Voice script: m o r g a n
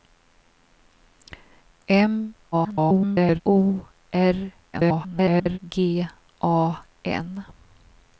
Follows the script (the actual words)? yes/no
no